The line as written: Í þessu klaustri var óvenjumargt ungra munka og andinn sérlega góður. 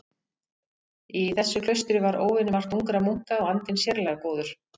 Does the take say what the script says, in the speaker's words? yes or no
yes